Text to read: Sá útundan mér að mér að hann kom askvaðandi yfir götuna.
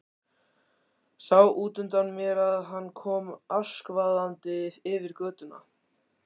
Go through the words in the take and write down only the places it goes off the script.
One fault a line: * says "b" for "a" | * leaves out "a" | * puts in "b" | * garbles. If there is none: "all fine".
* leaves out "mér að"